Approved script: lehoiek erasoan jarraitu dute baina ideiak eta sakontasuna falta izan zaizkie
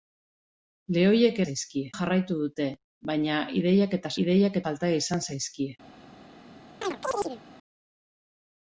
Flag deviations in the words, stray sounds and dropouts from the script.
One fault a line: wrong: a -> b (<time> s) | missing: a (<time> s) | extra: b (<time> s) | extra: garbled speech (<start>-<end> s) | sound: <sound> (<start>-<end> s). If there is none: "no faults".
wrong: erasoan -> zaizkie (1.5 s)
wrong: sakontasuna -> ideiak (4.2 s)
sound: chirp (6.8-7.4 s)